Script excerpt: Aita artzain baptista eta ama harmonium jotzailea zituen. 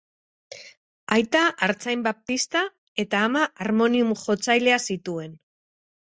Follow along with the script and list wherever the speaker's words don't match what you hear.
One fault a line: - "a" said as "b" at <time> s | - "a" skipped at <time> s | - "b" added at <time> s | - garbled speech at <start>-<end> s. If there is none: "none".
none